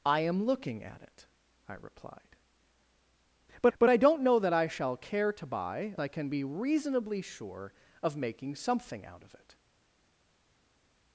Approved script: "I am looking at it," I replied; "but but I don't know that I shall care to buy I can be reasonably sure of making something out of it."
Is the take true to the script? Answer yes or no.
yes